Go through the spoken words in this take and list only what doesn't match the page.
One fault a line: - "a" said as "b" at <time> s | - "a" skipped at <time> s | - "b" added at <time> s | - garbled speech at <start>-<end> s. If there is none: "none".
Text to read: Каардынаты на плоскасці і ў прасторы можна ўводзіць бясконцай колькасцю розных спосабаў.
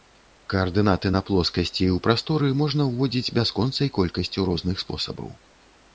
none